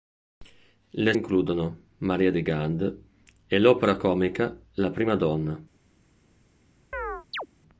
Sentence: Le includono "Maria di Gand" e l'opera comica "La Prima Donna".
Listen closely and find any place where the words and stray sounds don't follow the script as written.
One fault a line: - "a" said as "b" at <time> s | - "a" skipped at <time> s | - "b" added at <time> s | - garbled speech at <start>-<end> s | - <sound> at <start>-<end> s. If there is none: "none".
- chirp at 6.9-7.5 s